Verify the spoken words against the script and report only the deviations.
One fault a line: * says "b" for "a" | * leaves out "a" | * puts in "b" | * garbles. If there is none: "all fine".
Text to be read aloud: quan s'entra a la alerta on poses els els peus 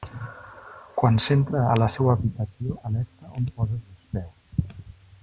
* puts in "seua habitació"
* leaves out "els"